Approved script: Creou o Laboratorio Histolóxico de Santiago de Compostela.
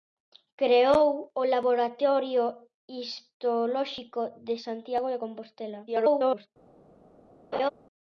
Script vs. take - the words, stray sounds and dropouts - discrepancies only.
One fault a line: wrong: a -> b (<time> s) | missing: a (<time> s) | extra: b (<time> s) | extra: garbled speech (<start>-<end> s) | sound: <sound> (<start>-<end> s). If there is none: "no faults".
extra: garbled speech (5.9-6.5 s)
sound: laugh (7.5-7.7 s)